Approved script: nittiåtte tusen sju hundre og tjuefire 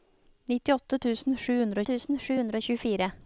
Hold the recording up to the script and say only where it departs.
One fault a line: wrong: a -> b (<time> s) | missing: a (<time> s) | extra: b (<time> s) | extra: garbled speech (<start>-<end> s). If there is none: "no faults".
extra: tusen sju hundre (1.9 s)